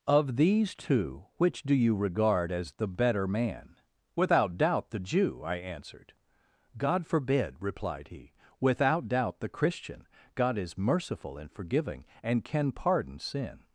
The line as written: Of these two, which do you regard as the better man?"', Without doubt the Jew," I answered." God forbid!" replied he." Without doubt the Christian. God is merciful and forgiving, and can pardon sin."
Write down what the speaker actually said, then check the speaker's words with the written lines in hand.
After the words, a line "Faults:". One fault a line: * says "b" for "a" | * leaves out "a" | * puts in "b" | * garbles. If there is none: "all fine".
Of these two, which do you regard as the better man?"', Without doubt the Jew," I answered." God forbid!" replied he." Without doubt the Christian. God is merciful and forgiving, and can pardon sin."
Faults:
all fine